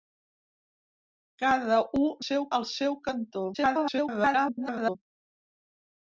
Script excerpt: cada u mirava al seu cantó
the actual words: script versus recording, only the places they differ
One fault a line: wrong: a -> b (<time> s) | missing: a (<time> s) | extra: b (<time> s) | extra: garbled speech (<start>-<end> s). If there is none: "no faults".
wrong: mirava -> seu (2.2 s)
extra: garbled speech (3.5-5.0 s)